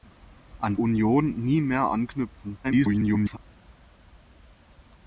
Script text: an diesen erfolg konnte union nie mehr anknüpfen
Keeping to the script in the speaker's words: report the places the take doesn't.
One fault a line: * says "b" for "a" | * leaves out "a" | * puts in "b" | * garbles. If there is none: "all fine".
* leaves out "diesen erfolg konnte"
* garbles